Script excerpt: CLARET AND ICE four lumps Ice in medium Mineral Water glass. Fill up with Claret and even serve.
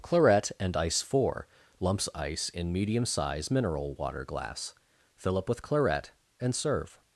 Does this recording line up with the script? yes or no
no